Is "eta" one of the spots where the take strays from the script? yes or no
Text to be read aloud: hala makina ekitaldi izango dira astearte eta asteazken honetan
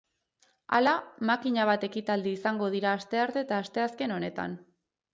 no